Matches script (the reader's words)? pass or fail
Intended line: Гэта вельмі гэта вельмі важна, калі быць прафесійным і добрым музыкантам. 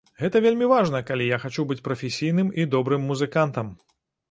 fail